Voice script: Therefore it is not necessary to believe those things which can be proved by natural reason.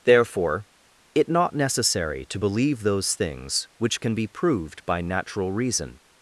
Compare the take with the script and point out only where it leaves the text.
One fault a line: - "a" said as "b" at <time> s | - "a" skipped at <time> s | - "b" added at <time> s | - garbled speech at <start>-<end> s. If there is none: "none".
- "is" skipped at 1.3 s